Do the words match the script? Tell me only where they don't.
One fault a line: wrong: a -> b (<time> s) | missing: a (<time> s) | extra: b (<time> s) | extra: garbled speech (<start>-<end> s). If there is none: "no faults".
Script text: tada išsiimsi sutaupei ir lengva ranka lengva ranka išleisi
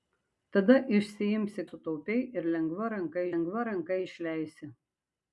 no faults